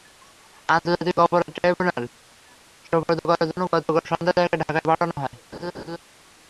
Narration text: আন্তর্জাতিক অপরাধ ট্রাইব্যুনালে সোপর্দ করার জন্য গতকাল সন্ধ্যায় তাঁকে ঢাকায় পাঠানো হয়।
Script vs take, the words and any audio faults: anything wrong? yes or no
yes